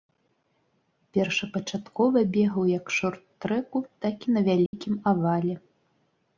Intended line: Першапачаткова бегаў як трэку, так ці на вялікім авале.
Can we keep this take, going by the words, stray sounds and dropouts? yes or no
no